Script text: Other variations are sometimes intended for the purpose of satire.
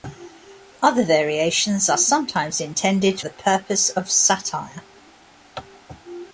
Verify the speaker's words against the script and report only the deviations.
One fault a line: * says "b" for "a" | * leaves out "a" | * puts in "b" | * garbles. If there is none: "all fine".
* leaves out "for"